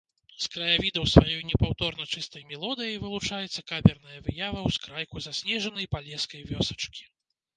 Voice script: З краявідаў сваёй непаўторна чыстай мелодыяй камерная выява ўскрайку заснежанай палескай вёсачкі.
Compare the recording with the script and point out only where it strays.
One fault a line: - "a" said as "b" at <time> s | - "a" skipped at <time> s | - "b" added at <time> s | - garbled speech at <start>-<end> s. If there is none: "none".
- "вылучаецца" added at 3.0 s